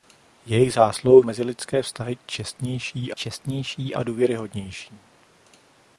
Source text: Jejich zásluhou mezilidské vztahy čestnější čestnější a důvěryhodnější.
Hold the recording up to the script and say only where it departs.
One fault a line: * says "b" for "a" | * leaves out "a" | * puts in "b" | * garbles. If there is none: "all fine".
all fine